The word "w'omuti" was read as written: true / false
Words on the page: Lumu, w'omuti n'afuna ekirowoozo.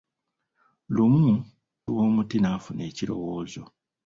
true